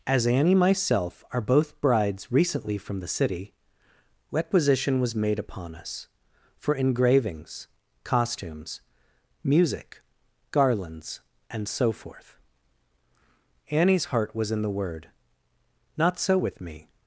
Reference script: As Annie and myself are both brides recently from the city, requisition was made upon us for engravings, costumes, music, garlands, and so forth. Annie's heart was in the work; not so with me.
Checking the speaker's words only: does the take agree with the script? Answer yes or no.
no